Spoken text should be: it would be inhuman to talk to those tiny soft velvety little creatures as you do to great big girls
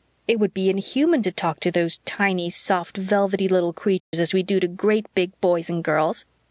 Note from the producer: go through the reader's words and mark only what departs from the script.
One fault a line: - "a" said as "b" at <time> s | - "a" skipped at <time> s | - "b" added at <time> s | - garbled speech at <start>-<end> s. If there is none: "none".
- "you" said as "we" at 4.3 s
- "boys and" added at 5.4 s